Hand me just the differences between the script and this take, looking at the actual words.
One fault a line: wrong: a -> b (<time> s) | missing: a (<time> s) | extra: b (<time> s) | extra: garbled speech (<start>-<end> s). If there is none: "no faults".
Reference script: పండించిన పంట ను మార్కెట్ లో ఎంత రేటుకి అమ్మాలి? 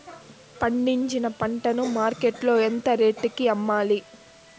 no faults